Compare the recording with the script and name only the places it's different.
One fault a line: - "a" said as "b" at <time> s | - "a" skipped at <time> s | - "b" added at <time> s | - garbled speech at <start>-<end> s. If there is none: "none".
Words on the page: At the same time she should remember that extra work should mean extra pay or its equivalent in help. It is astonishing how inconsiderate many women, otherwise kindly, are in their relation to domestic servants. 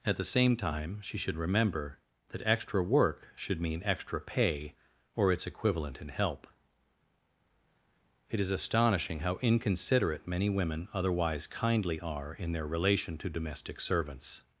none